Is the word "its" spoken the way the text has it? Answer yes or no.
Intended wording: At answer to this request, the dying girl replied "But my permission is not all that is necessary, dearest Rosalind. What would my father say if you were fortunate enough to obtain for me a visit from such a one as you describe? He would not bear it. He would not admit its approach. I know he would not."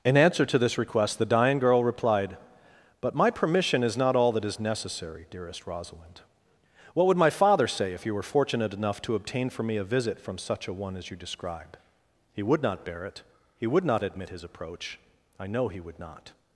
no